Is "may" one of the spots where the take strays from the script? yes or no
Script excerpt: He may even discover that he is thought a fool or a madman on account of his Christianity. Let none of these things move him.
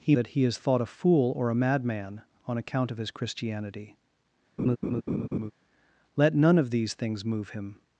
yes